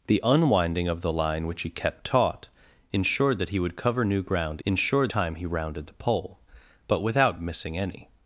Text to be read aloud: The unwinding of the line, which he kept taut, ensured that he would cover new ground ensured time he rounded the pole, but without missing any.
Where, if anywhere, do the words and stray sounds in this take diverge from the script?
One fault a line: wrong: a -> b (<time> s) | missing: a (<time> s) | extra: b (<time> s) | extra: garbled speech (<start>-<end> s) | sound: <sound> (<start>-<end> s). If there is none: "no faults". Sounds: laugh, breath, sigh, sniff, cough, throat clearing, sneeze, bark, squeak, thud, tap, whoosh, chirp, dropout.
no faults